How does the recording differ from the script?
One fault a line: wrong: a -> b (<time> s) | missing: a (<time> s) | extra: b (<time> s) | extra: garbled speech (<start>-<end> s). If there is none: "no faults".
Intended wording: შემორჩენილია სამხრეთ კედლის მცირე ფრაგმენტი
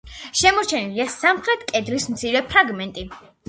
no faults